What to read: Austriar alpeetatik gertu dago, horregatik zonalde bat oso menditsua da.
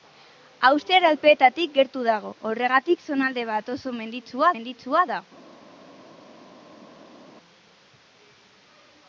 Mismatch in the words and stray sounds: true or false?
true